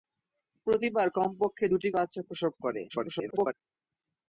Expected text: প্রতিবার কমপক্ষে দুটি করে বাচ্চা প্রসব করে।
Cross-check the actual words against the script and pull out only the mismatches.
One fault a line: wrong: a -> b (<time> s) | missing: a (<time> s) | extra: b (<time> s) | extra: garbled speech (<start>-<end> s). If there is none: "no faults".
missing: করে (1.9 s)
extra: garbled speech (2.9-3.5 s)